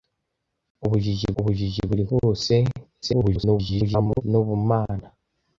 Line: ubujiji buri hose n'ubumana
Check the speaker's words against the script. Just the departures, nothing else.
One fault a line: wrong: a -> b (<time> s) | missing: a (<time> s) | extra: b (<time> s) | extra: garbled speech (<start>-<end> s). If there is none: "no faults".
extra: ubujiji (1.4 s)
extra: garbled speech (3.0-4.2 s)